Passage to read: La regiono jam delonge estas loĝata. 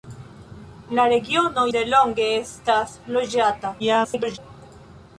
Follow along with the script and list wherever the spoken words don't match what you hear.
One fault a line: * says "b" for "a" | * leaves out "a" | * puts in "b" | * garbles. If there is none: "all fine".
* leaves out "jam"
* garbles